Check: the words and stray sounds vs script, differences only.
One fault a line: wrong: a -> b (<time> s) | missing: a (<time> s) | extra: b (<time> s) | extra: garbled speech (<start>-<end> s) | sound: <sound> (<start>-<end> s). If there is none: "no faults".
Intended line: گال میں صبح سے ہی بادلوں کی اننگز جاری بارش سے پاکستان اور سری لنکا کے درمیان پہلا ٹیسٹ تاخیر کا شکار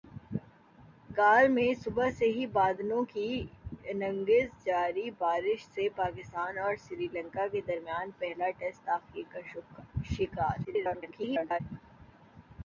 extra: garbled speech (10.6-11.6 s)